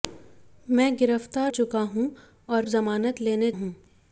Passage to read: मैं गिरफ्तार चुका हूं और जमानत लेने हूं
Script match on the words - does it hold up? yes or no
yes